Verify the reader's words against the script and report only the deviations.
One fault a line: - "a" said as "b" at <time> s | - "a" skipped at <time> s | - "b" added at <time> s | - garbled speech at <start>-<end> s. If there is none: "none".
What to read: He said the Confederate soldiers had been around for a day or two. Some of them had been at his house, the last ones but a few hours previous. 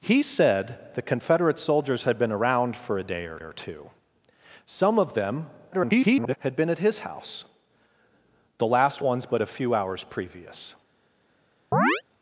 - "or" added at 3.4 s
- garbled speech at 5.7-6.4 s